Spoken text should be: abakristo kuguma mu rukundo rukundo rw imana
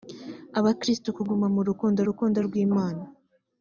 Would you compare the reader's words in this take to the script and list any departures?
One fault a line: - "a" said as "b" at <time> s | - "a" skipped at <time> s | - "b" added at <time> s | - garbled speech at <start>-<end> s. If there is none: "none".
none